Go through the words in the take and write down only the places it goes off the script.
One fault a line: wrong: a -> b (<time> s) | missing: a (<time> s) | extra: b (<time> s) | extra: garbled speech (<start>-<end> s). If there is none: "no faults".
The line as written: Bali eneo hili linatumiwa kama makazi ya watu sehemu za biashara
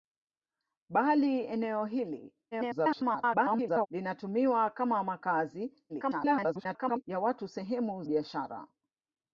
extra: garbled speech (2.5-3.9 s)
extra: garbled speech (5.9-7.0 s)
missing: za (8.0 s)